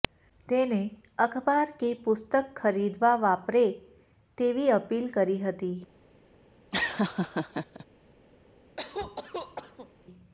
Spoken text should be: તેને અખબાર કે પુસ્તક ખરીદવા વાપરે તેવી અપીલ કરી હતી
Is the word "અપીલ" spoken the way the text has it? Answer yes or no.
yes